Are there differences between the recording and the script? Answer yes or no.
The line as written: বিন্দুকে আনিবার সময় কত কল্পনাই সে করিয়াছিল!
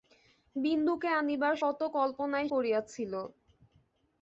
yes